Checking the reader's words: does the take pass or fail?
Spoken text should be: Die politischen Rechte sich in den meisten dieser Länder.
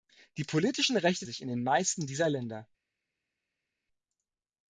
pass